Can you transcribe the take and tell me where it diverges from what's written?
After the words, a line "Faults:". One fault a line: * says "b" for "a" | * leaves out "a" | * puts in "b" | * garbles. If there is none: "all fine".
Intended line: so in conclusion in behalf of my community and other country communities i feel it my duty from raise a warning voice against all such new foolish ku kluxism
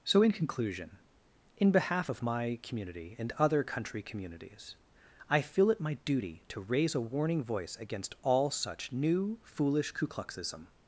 so in conclusion in behalf of my community and other country communities i feel it my duty to raise a warning voice against all such new foolish ku kluxism
Faults:
* says "to" for "from"